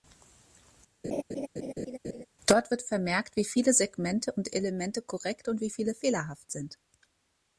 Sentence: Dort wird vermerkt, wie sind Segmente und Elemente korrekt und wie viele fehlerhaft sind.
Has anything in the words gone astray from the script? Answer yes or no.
yes